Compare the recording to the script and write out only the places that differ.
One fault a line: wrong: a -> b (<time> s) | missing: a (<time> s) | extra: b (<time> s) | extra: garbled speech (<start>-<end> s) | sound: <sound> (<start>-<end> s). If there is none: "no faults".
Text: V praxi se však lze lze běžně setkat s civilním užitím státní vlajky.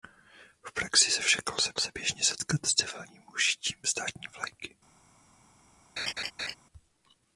sound: laugh (6.0-6.5 s)